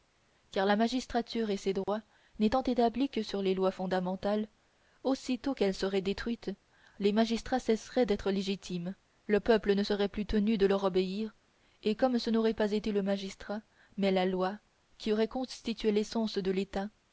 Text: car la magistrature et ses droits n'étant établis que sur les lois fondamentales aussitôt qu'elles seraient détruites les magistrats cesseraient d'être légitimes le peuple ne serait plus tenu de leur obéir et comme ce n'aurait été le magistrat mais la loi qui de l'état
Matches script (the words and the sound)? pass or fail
fail